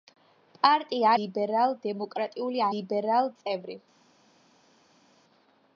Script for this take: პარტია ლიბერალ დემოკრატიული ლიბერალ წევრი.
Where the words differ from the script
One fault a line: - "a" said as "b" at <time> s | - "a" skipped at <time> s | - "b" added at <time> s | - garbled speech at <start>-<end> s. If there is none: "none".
none